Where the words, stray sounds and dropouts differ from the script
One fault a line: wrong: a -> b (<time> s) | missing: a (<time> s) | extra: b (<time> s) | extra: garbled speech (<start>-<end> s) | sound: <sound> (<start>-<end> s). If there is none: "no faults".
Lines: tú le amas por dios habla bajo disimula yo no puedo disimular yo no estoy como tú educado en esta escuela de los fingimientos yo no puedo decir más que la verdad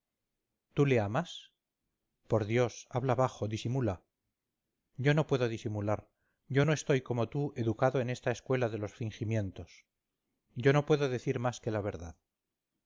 no faults